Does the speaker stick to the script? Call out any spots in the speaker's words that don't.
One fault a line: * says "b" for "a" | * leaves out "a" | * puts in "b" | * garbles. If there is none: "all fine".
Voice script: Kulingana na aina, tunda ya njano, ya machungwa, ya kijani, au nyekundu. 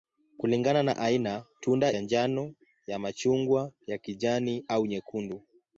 all fine